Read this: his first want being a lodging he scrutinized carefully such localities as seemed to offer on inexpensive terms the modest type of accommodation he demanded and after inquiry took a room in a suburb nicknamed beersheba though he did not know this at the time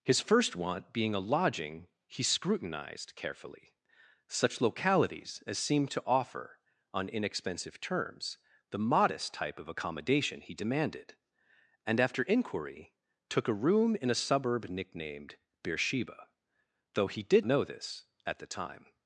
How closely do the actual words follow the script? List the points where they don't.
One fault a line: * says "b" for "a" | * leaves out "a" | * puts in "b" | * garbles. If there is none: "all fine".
* leaves out "not"